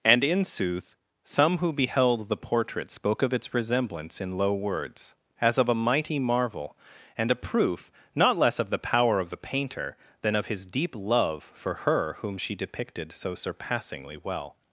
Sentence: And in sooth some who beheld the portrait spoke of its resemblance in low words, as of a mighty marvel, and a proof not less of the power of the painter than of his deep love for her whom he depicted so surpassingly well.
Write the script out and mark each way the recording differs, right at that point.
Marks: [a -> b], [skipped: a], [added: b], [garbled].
And in sooth some who beheld the portrait spoke of its resemblance in low words, as of a mighty marvel, and a proof not less of the power of the painter than of his deep love for her whom [he -> she] depicted so surpassingly well.